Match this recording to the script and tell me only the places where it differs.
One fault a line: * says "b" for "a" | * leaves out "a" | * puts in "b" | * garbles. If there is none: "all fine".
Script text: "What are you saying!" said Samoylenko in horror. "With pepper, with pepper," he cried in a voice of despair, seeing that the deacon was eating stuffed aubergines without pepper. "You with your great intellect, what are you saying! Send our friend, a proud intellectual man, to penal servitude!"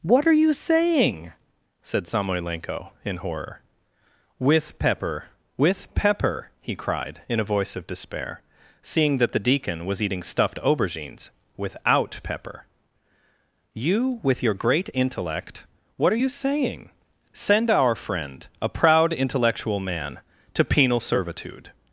all fine